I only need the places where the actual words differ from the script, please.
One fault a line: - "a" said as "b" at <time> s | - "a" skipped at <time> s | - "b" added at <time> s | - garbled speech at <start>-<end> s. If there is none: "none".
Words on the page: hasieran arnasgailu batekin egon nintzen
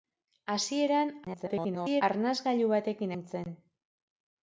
- garbled speech at 1.2-2.0 s
- "egon" skipped at 3.1 s